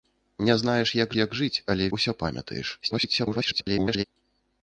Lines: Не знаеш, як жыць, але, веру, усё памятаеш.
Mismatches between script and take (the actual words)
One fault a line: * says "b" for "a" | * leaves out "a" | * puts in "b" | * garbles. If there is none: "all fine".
* puts in "як"
* leaves out "веру"
* garbles